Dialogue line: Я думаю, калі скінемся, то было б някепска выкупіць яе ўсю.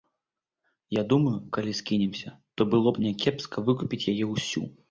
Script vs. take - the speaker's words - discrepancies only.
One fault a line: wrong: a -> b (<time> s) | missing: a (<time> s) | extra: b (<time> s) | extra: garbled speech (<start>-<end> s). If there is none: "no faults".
no faults